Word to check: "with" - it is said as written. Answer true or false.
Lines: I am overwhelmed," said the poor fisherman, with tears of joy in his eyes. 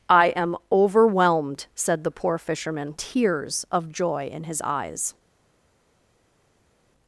false